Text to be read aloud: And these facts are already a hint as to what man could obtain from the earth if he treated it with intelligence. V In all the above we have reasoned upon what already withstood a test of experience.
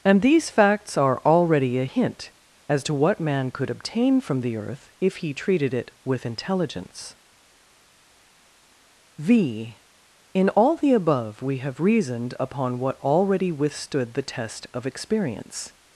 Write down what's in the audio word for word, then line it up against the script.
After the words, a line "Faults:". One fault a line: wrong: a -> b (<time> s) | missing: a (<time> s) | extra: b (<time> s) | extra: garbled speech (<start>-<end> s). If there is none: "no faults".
And these facts are already a hint as to what man could obtain from the earth if he treated it with intelligence. V In all the above we have reasoned upon what already withstood the test of experience.
Faults:
wrong: a -> the (14.1 s)